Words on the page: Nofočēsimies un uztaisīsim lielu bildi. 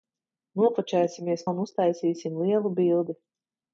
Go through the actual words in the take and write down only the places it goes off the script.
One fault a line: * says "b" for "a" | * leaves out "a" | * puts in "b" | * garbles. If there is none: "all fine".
all fine